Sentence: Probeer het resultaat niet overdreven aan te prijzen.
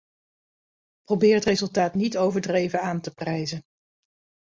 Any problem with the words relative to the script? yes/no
no